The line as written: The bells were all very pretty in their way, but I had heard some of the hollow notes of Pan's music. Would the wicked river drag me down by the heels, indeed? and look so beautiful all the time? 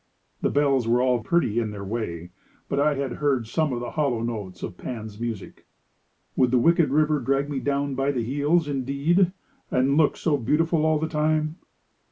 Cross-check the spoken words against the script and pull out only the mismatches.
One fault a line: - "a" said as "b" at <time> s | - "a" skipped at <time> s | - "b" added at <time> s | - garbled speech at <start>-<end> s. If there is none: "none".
- "very" skipped at 1.2 s